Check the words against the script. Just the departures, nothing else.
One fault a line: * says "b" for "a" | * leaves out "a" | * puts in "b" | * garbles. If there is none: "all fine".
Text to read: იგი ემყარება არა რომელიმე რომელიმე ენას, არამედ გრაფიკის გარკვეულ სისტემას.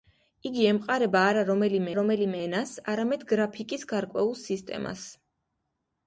all fine